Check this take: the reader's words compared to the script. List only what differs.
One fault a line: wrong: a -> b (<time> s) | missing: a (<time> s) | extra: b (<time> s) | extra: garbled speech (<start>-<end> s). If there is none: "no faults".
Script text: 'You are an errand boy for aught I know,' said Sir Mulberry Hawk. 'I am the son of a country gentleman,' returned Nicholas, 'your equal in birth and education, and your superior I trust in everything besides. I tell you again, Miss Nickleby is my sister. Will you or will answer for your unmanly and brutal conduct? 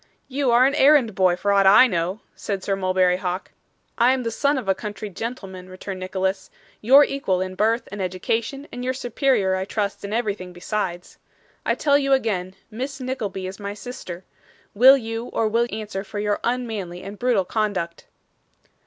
no faults